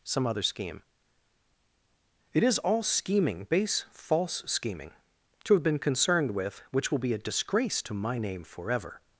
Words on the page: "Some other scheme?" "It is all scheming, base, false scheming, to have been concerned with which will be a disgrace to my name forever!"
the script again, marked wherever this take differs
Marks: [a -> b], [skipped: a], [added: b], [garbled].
"Some other scheme?" "It is all scheming, base, false scheming, to have been concerned with which will be a disgrace to my name forever!"